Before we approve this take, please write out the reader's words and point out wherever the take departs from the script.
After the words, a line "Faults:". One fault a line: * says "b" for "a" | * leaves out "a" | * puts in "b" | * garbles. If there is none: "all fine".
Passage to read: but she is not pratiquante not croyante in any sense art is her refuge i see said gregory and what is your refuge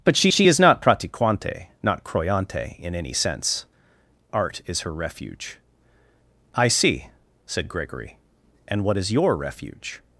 but she she is not pratiquante not croyante in any sense art is her refuge i see said gregory and what is your refuge
Faults:
* puts in "she"